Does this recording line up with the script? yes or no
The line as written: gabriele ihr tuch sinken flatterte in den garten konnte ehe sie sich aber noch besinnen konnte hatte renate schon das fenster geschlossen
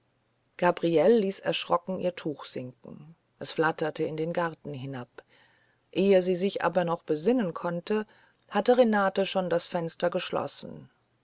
no